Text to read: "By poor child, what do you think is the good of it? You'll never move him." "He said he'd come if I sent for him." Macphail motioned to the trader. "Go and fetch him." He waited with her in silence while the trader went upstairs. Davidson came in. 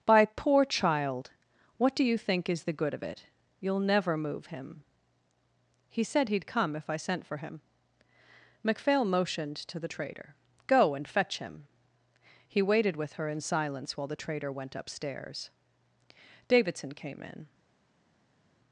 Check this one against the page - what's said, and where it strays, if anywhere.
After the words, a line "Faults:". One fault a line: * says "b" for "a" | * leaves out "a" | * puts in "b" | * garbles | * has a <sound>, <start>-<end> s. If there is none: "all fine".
"By poor child, what do you think is the good of it? You'll never move him." "He said he'd come if I sent for him." Macphail motioned to the trader. "Go and fetch him." He waited with her in silence while the trader went upstairs. Davidson came in.
Faults:
all fine